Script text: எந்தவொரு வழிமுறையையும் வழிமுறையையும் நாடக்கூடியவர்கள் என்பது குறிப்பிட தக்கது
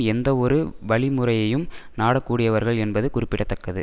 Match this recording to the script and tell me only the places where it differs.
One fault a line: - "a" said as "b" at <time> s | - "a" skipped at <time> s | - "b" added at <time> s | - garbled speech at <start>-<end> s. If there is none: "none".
- "வழிமுறையையும்" skipped at 1.6 s